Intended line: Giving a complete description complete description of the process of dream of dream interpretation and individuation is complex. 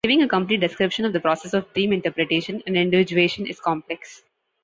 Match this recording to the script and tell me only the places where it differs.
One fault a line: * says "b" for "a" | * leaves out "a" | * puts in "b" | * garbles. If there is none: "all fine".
* leaves out "complete description"
* leaves out "of dream"